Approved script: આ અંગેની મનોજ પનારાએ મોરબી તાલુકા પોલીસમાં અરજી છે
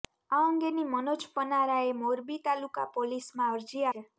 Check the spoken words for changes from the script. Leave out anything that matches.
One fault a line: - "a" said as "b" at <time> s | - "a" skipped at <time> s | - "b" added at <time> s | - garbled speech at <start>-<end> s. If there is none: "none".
none